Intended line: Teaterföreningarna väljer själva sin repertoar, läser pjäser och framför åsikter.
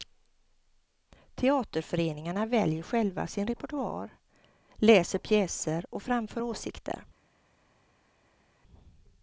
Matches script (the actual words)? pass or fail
pass